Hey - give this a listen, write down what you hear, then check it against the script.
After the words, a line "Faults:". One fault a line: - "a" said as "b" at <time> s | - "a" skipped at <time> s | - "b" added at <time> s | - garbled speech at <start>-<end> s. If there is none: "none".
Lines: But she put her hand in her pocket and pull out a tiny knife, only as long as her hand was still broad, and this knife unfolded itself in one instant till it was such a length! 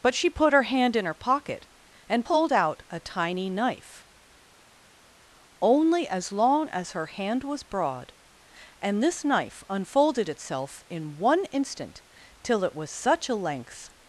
But she put her hand in her pocket and pulled out a tiny knife, only as long as her hand was broad, and this knife unfolded itself in one instant till it was such a length!
Faults:
- "pull" said as "pulled" at 2.2 s
- "still" skipped at 7.6 s